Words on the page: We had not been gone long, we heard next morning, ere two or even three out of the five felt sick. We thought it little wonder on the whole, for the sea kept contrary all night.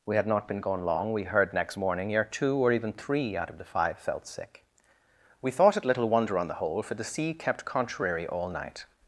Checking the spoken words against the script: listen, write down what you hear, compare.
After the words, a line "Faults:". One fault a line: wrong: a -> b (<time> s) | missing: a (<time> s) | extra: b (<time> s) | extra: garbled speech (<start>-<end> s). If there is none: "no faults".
We had not been gone long, we heard next morning, ere two or even three out of the five felt sick. We thought it little wonder on the whole, for the sea kept contrary all night.
Faults:
no faults